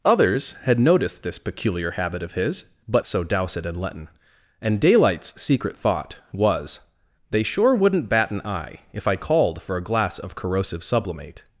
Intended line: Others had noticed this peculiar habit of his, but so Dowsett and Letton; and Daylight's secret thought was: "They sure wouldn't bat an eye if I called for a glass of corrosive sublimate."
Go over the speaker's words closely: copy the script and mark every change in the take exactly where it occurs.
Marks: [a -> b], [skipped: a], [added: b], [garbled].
Others had noticed this peculiar habit of his, but so Dowsett and Letton; and Daylight's secret thought was: "They sure wouldn't bat an eye if I called for a glass of corrosive sublimate."